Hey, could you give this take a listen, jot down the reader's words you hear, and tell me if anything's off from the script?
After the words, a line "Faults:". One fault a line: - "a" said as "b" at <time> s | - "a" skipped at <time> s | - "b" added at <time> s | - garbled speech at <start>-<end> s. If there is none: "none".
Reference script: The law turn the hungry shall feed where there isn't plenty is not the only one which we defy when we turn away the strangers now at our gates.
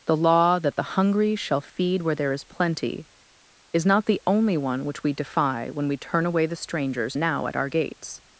The law that the hungry shall feed where there is plenty is not the only one which we defy when we turn away the strangers now at our gates.
Faults:
- "turn" said as "that" at 0.6 s
- "isn't" said as "is" at 2.3 s